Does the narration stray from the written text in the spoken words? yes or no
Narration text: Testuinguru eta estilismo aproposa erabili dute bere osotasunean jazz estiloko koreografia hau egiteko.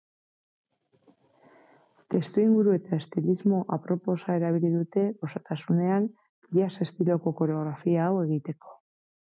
yes